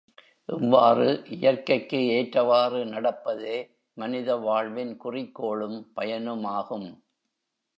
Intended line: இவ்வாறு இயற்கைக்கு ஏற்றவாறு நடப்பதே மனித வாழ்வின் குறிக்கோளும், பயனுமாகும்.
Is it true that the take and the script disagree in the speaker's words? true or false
false